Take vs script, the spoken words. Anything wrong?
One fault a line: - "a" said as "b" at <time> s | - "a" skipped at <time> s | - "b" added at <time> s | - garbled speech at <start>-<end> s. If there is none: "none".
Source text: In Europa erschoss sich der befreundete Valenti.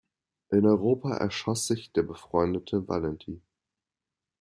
none